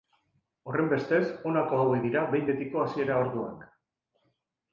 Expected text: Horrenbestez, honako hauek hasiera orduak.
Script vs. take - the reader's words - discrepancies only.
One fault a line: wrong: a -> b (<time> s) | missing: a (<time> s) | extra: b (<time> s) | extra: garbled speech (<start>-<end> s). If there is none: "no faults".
extra: dira behin betiko (2.1 s)